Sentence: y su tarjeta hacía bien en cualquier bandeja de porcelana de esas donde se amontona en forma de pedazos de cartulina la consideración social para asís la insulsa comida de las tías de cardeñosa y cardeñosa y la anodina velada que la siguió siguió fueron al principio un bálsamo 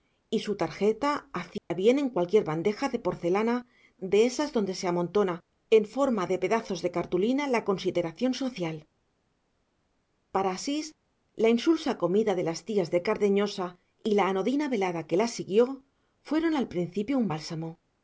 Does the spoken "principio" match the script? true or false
true